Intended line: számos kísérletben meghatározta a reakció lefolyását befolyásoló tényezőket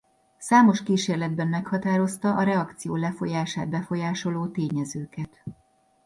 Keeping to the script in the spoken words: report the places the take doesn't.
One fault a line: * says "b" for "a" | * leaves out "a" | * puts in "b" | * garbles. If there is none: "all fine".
all fine